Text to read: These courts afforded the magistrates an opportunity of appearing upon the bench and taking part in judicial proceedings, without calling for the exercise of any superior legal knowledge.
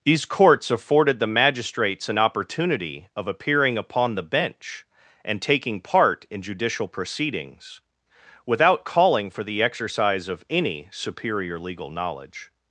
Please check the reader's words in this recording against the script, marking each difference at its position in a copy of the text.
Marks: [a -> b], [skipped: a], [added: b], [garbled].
These courts afforded the magistrates an opportunity of appearing upon the bench and taking part in judicial proceedings, without calling for the exercise of any superior legal knowledge.